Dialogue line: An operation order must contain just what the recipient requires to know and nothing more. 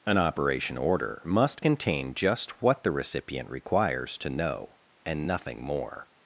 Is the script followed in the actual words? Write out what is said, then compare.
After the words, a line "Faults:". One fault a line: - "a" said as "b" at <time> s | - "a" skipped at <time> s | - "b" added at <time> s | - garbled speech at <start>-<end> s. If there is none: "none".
An operation order must contain just what the recipient requires to know and nothing more.
Faults:
none